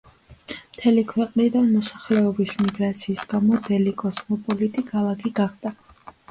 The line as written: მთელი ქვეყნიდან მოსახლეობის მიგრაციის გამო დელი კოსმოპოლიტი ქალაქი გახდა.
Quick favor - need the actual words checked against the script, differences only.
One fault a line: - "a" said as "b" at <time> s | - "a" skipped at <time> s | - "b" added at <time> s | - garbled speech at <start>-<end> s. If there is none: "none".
none